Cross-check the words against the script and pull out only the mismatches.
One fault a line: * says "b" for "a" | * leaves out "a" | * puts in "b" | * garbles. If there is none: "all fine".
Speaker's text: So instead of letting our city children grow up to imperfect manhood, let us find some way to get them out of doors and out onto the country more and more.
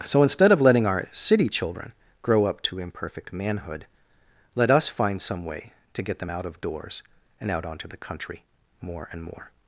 all fine